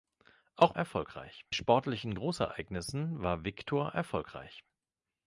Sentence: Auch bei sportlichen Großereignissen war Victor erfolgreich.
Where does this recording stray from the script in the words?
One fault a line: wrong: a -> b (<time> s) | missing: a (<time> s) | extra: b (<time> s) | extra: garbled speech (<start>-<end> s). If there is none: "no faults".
wrong: bei -> erfolgreich (0.7 s)